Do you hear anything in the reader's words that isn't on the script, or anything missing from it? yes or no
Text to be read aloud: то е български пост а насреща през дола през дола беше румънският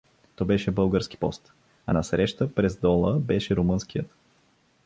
yes